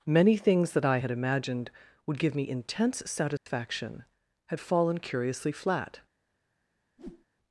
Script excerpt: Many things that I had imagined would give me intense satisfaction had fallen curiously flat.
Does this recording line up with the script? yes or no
yes